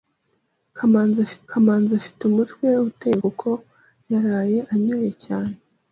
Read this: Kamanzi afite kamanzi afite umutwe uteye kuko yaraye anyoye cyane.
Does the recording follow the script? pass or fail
pass